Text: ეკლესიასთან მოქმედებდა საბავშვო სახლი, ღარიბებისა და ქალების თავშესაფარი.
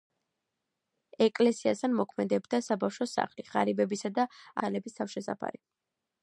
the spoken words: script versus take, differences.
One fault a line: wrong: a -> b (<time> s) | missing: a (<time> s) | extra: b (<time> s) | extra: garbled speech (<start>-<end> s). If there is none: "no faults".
no faults